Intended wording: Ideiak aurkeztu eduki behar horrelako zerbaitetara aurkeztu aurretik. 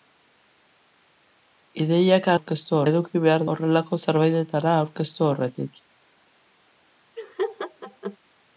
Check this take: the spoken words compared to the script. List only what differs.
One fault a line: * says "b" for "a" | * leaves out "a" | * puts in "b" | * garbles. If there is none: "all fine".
all fine